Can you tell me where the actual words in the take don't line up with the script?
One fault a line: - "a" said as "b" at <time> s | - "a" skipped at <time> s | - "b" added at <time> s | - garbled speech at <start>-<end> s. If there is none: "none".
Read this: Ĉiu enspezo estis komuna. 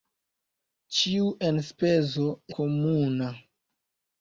- "estis" skipped at 2.2 s